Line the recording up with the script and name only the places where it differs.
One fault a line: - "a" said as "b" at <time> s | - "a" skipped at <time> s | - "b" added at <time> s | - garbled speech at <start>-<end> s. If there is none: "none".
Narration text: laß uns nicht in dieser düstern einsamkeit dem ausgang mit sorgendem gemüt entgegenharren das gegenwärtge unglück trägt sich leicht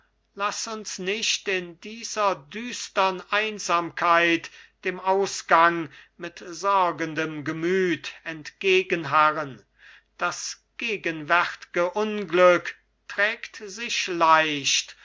none